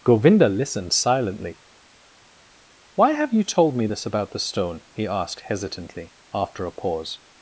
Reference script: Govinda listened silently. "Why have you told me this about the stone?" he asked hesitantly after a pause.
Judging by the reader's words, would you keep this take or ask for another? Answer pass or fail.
pass